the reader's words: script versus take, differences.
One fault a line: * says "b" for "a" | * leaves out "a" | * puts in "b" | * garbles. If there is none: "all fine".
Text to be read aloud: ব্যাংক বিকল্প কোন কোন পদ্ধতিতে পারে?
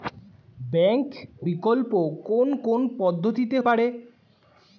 all fine